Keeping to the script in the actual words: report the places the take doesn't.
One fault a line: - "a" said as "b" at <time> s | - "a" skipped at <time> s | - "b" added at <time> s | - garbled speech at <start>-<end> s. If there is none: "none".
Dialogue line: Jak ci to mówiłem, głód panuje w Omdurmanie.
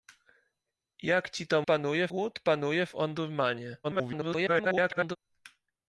- "mówiłem" said as "panuje" at 1.6 s
- garbled speech at 3.8-5.2 s